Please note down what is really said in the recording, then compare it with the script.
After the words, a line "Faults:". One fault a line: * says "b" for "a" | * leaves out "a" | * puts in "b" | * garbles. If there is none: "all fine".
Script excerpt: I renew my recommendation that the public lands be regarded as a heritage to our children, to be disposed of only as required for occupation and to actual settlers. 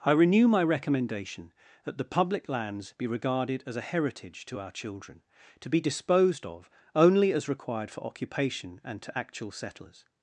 I renew my recommendation that the public lands be regarded as a heritage to our children, to be disposed of only as required for occupation and to actual settlers.
Faults:
all fine